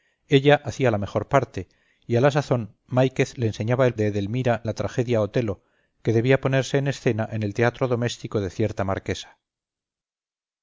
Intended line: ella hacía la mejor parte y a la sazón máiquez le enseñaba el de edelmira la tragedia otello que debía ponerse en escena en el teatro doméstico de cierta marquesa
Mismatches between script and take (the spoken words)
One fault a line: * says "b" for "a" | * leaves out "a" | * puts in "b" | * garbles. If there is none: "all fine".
all fine